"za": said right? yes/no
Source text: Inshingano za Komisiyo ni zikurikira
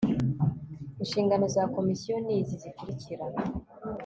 yes